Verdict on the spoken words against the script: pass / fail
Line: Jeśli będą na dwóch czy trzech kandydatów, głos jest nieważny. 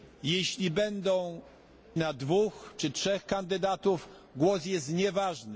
pass